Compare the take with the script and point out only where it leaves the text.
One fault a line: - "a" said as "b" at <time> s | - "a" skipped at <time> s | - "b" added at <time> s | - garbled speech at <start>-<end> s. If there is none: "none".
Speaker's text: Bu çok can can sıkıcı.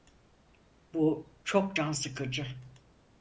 - "can" skipped at 1.9 s